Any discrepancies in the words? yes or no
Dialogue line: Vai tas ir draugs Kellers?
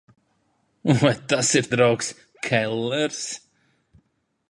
no